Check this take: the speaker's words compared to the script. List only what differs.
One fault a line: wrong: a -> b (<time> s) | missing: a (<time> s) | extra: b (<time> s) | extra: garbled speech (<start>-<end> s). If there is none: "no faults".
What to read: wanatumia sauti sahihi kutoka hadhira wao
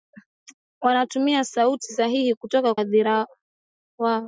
no faults